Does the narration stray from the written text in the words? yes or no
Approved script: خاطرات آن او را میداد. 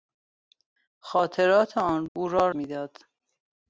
no